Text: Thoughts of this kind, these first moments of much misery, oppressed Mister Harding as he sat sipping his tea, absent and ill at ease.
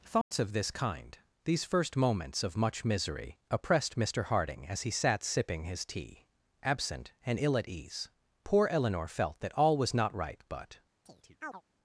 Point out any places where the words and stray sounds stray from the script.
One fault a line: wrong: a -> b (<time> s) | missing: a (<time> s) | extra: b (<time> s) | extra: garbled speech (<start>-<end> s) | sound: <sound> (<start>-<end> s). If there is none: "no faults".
sound: dropout (0.2-0.3 s)
extra: Poor Eleanor felt that all was not right but (8.4 s)
sound: chirp (11.0-11.6 s)